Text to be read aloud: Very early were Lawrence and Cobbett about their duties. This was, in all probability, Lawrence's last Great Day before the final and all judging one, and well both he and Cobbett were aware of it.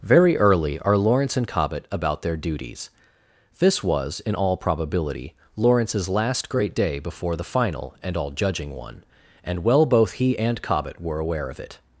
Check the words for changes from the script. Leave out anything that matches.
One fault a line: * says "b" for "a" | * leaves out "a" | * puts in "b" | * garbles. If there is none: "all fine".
* says "are" for "were"